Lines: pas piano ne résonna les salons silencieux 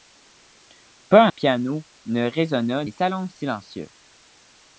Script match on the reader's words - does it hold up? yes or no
yes